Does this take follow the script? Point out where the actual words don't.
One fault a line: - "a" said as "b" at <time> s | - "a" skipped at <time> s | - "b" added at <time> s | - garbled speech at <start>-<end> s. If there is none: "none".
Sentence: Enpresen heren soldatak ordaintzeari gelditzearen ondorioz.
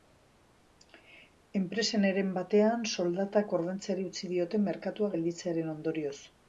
- "batean" added at 2.4 s
- "utzi diote merkatua" added at 4.1 s